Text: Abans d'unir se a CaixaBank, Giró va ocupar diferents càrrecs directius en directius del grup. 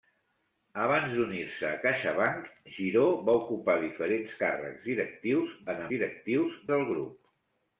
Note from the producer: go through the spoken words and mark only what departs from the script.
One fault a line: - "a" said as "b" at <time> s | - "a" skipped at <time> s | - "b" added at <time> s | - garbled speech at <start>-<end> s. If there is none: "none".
none